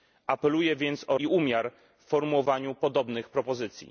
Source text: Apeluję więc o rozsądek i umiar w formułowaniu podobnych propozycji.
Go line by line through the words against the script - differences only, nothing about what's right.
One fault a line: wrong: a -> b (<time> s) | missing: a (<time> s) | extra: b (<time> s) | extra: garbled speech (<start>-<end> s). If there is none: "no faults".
missing: rozsądek (1.2 s)